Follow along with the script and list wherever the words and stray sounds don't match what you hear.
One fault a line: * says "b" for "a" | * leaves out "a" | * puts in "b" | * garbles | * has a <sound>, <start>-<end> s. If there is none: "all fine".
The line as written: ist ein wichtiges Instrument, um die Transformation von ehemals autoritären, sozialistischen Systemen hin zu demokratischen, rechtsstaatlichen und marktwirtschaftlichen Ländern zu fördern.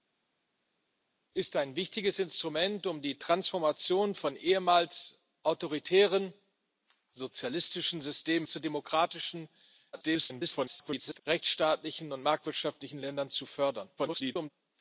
* leaves out "hin"
* garbles
* garbles